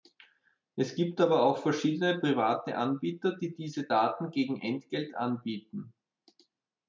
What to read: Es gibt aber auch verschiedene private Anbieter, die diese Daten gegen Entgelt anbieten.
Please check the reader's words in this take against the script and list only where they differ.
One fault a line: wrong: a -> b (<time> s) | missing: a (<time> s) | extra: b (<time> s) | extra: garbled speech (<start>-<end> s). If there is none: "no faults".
no faults